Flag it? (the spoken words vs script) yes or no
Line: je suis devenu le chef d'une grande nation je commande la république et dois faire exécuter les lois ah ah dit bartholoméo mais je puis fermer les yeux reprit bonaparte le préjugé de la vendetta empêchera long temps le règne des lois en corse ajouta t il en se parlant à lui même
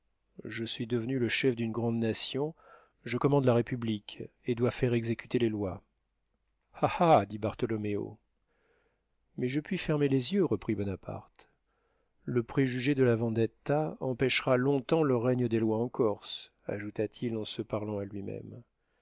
no